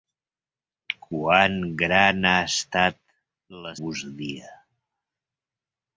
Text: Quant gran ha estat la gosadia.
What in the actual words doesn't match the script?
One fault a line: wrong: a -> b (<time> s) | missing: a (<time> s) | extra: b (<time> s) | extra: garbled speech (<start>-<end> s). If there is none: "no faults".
no faults